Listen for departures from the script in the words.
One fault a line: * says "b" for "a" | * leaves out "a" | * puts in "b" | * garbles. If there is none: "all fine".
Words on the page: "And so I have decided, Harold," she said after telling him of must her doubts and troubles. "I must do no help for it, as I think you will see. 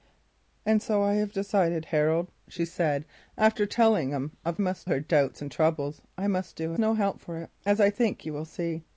all fine